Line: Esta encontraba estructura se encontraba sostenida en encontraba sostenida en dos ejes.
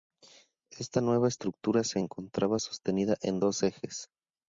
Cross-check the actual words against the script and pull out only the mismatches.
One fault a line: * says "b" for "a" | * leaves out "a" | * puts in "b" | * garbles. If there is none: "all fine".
* says "nueva" for "encontraba"
* leaves out "encontraba sostenida en"